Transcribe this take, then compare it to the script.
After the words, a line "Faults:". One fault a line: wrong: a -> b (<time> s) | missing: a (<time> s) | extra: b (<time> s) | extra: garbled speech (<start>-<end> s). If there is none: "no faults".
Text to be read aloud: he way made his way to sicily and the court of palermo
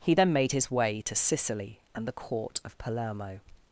he then made his way to sicily and the court of palermo
Faults:
wrong: way -> then (0.1 s)